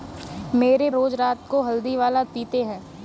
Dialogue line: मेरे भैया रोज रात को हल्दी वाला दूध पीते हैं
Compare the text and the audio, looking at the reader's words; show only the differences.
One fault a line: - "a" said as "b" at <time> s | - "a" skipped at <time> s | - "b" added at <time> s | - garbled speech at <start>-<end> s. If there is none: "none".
- "भैया" skipped at 0.9 s
- "दूध" skipped at 2.2 s